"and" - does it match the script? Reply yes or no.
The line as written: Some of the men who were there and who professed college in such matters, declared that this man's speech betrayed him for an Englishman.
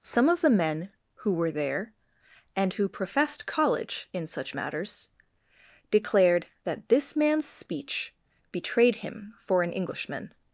yes